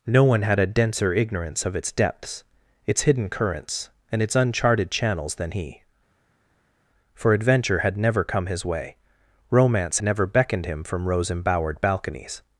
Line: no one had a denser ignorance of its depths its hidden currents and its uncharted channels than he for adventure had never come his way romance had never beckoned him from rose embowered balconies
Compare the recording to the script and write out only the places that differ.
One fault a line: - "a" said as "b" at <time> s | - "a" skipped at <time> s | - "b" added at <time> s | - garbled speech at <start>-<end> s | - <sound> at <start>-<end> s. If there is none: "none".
- "had" skipped at 10.0 s